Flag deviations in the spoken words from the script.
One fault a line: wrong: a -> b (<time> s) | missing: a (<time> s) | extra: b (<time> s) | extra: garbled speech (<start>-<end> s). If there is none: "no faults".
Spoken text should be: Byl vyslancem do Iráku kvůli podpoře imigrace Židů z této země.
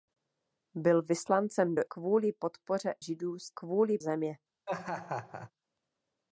missing: Iráku (1.8 s)
missing: imigrace (2.9 s)
wrong: této -> kvůli (3.5 s)